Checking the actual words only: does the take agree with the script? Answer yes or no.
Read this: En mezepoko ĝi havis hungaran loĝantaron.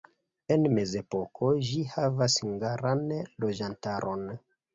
yes